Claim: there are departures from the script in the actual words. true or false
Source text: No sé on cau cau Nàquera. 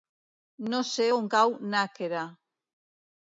true